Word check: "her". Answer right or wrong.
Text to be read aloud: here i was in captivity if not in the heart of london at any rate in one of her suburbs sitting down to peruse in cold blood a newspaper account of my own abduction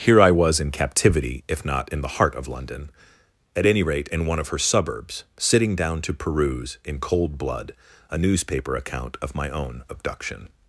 right